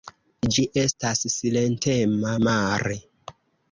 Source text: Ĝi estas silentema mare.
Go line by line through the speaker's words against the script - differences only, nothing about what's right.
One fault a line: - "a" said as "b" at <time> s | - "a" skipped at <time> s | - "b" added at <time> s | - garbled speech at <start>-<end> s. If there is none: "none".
none